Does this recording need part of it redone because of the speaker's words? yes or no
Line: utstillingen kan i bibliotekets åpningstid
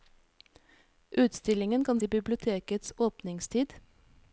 no